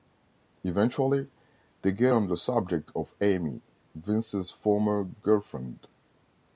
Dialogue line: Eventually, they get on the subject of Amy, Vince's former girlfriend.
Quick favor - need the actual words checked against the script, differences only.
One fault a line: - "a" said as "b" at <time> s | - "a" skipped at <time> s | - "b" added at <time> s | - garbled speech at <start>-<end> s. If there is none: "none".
none